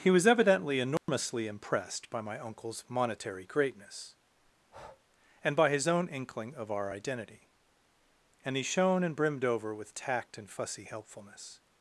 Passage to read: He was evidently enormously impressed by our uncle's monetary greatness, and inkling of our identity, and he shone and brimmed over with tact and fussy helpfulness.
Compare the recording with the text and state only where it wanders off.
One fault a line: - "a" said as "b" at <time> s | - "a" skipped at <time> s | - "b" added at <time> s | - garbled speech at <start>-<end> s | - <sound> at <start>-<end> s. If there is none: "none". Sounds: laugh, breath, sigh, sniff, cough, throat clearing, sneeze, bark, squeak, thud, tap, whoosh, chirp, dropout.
- dropout at 1.0-1.1 s
- "our" said as "my" at 2.2 s
- breath at 4.6-5.0 s
- "by his own" added at 5.5 s